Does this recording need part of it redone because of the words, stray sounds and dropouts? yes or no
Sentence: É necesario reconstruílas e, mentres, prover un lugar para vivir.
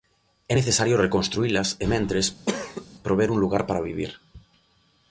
yes